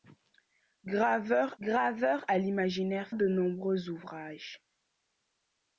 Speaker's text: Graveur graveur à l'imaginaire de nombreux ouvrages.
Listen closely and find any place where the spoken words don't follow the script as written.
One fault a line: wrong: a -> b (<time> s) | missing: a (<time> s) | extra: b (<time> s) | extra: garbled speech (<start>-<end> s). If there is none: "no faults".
no faults